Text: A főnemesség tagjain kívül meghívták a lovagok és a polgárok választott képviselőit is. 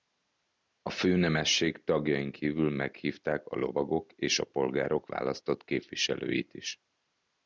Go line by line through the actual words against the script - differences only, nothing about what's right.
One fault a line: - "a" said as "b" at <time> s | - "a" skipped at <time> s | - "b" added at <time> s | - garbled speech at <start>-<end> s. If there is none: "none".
none